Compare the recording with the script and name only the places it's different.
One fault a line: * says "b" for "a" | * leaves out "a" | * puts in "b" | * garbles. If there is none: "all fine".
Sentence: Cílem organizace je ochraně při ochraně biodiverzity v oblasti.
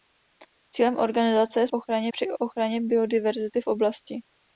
all fine